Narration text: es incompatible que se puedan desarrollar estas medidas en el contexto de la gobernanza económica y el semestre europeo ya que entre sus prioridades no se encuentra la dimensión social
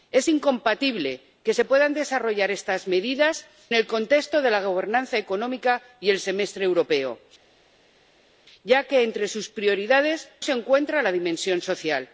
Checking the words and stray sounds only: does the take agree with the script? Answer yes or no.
no